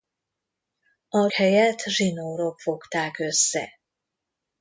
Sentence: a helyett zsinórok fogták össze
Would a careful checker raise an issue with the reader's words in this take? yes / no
no